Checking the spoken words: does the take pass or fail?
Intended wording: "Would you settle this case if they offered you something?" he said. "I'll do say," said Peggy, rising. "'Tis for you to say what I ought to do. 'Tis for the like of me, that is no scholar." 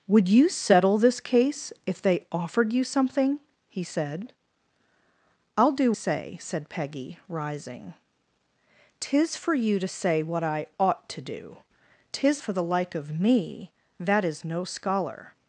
pass